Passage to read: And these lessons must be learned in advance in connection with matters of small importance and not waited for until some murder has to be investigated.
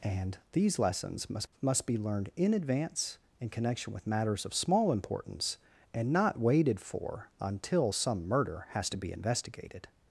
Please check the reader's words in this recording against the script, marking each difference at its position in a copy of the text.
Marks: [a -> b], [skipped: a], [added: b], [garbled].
And these lessons must [added: must] be learned in advance in connection with matters of small importance and not waited for until some murder has to be investigated.